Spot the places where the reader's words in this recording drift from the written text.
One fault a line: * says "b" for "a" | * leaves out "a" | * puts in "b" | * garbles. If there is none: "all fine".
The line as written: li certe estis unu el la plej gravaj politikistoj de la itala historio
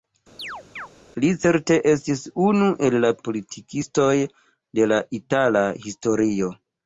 * leaves out "plej gravaj"